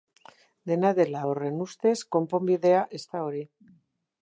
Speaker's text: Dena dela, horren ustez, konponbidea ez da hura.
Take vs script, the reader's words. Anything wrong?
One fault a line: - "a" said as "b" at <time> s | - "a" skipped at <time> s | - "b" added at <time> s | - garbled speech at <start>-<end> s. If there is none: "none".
- "hura" said as "hori" at 3.3 s